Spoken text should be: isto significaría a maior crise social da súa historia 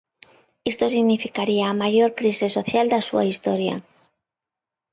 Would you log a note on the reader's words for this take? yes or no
no